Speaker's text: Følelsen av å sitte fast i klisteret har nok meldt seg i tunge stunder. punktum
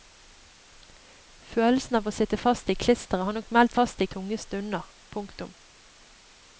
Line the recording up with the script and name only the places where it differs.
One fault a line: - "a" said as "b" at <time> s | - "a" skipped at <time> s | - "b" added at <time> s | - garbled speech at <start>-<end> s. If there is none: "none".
- "seg" said as "fast" at 3.7 s